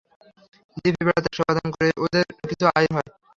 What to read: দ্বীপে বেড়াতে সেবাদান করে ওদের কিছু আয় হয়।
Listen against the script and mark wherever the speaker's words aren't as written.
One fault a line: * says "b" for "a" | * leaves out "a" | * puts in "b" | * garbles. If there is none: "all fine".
all fine